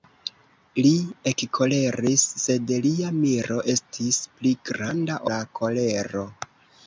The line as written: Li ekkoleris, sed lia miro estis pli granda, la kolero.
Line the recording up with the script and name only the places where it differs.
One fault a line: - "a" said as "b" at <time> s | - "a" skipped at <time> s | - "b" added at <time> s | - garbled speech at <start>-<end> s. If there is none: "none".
none